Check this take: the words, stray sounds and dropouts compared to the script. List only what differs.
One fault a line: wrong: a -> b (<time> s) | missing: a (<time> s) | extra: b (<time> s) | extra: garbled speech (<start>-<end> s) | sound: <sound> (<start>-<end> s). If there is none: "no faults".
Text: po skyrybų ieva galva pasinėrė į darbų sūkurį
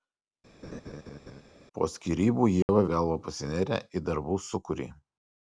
sound: laugh (0.6-1.4 s)
sound: dropout (2.6-2.7 s)